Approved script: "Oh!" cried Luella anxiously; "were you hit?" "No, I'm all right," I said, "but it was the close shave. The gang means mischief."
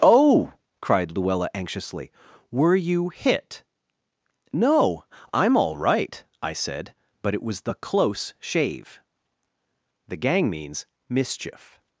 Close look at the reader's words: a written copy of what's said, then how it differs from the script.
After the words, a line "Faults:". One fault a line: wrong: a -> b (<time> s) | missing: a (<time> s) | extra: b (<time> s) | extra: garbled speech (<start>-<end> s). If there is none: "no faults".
"Oh!" cried Luella anxiously; "were you hit?" "No, I'm all right," I said, "but it was the close shave. The gang means mischief."
Faults:
no faults